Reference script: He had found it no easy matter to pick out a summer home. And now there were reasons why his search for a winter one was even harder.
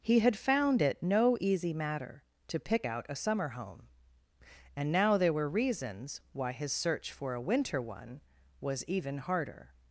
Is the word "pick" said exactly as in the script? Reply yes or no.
yes